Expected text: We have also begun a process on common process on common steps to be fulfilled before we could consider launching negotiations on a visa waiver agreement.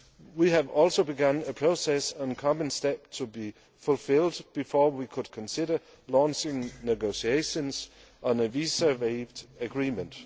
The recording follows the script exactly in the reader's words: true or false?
false